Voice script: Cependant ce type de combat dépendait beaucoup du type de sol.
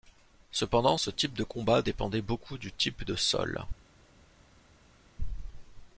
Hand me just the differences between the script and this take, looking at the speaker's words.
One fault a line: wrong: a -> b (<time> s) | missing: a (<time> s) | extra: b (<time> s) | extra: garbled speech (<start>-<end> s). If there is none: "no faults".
no faults